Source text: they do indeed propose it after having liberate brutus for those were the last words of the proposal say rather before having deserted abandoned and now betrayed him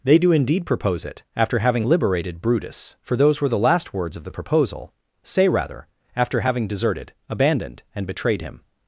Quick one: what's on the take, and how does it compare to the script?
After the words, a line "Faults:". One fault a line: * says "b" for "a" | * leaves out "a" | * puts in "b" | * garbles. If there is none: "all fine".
they do indeed propose it after having liberated brutus for those were the last words of the proposal say rather after having deserted abandoned and betrayed him
Faults:
* says "liberated" for "liberate"
* says "after" for "before"
* leaves out "now"